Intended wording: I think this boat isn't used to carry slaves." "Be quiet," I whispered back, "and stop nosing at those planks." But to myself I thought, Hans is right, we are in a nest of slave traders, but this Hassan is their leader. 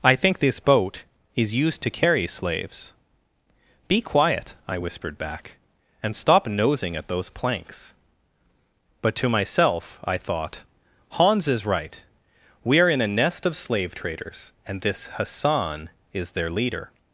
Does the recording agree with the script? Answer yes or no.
no